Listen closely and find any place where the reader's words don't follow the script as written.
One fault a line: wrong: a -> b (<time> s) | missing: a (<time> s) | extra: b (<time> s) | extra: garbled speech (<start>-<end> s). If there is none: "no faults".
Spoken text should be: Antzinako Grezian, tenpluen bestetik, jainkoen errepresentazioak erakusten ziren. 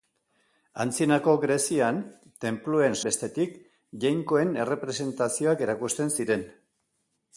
no faults